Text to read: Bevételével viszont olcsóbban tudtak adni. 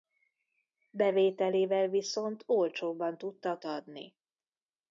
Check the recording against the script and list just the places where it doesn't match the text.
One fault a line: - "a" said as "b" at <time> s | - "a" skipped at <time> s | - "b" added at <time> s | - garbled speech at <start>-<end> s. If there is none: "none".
none